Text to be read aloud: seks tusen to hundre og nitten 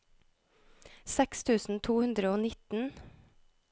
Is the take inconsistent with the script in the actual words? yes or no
no